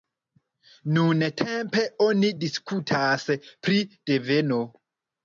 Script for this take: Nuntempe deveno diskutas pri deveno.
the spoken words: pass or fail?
fail